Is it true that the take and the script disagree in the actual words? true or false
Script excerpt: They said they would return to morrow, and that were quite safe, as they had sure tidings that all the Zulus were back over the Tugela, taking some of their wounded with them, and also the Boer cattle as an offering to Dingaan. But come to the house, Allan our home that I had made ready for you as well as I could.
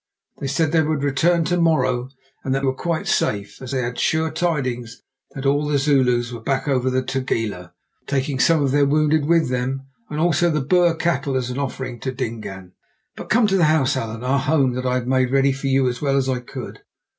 false